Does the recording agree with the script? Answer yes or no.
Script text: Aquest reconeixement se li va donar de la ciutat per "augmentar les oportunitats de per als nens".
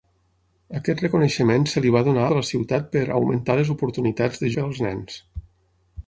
yes